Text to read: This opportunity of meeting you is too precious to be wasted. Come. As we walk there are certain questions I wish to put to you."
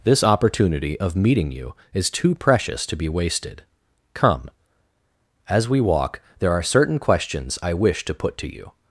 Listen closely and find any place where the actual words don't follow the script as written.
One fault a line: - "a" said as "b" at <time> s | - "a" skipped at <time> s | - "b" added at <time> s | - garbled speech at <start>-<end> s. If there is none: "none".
none